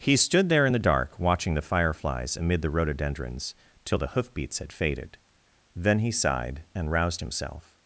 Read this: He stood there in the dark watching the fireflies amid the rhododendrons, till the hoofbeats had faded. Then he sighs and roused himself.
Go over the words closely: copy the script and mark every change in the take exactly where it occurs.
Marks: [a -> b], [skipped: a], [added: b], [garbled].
He stood there in the dark watching the fireflies amid the rhododendrons, till the hoofbeats had faded. Then he [sighs -> sighed] and roused himself.